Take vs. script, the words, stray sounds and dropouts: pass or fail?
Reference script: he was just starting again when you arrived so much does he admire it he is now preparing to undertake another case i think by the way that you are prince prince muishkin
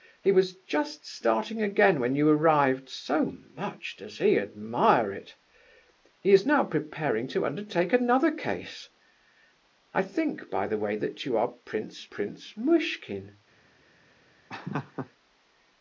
fail